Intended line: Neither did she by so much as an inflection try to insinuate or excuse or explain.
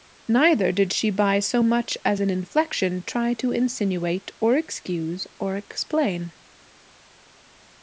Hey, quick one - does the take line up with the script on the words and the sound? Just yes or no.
yes